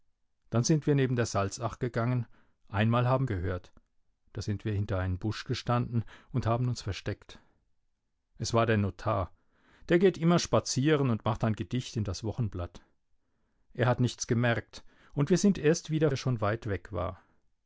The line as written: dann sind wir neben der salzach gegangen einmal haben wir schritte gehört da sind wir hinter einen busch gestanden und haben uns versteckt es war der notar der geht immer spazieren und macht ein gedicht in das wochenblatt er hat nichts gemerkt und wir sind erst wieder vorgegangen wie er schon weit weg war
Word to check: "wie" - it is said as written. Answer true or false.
false